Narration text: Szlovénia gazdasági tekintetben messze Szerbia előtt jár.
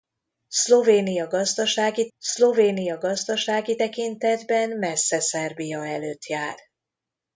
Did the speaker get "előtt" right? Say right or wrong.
right